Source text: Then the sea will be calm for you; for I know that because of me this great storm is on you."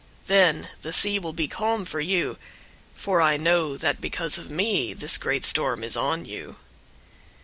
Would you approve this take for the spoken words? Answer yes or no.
yes